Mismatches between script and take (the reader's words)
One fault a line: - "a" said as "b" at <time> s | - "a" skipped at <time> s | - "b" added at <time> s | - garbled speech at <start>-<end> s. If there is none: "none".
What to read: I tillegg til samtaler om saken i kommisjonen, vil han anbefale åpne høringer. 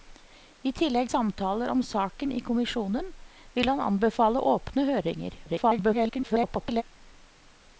- "til" skipped at 1.1 s
- garbled speech at 5.5-6.8 s